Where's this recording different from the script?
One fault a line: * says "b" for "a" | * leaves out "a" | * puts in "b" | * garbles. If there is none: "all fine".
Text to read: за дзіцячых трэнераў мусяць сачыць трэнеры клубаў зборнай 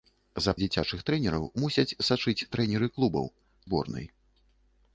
all fine